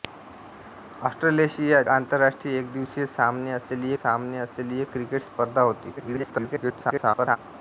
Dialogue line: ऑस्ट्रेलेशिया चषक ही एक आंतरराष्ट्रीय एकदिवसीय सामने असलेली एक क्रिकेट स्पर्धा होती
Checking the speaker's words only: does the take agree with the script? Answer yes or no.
no